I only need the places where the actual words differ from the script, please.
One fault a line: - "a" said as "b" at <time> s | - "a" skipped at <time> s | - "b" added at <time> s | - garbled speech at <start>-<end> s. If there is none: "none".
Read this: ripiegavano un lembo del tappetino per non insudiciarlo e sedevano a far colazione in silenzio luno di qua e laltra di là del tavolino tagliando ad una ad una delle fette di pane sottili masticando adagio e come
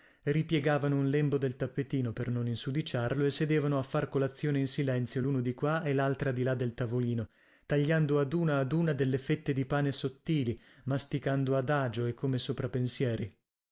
none